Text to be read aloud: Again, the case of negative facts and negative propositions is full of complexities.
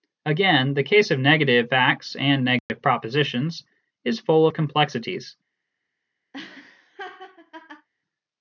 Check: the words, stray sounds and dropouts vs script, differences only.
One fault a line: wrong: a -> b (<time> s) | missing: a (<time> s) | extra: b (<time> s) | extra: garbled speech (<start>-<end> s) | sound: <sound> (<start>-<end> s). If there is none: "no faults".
sound: dropout (2.6-2.7 s)
sound: laugh (6.3-7.9 s)